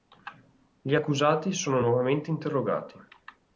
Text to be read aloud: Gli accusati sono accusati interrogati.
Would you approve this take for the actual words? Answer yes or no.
no